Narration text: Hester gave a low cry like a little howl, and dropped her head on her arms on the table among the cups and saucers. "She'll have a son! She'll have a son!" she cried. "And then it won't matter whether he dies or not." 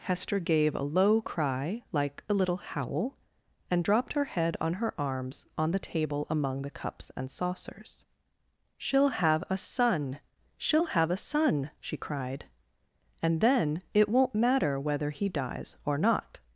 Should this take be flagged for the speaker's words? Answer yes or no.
no